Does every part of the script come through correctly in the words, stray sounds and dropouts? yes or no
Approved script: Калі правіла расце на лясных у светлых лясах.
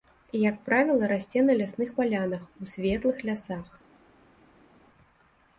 no